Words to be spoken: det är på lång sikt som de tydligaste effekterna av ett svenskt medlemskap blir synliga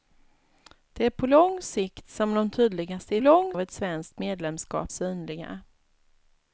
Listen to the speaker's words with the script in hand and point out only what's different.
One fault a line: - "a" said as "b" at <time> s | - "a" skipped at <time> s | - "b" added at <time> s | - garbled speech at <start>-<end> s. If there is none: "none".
- "effekterna" said as "lång" at 3.2 s
- "blir" skipped at 4.9 s